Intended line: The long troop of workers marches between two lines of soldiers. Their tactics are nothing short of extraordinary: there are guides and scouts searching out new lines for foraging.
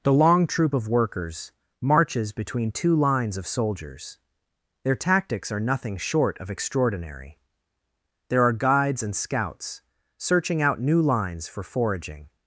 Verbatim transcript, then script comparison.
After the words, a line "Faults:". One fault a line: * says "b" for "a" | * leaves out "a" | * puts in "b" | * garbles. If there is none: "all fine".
The long troop of workers marches between two lines of soldiers. Their tactics are nothing short of extraordinary: there are guides and scouts searching out new lines for foraging.
Faults:
all fine